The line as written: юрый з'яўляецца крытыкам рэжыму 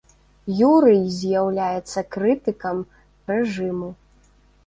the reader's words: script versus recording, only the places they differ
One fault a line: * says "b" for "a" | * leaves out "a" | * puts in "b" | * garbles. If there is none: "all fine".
all fine